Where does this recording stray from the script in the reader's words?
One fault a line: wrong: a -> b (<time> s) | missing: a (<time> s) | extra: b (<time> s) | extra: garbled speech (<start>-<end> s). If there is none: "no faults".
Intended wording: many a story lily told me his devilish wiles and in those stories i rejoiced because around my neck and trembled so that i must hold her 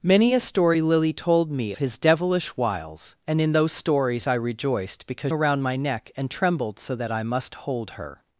no faults